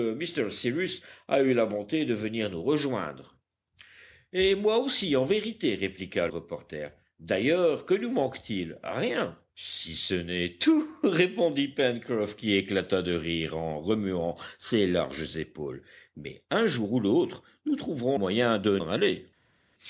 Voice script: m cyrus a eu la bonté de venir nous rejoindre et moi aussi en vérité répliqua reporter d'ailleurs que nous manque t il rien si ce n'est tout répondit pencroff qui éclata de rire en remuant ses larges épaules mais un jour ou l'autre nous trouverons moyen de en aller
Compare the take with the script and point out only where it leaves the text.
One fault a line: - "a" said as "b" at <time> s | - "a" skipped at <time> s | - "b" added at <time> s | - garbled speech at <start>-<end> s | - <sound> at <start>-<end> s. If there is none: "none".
none